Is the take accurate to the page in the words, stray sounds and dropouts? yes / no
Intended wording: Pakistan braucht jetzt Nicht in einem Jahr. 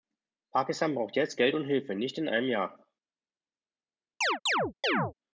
no